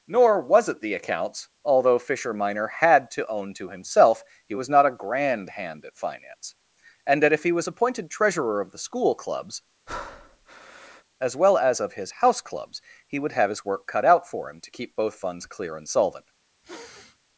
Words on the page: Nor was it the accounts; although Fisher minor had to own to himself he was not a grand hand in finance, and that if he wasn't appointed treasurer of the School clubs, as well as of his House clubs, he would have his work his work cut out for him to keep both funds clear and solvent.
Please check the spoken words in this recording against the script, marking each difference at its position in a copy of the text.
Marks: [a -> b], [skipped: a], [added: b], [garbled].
Nor was it the accounts; although Fisher minor had to own to himself he was not a grand hand [in -> at] finance, and that if he [wasn't -> was] appointed treasurer of the School clubs, as well as of his House clubs, he would have his work [skipped: his work] cut out for him to keep both funds clear and solvent.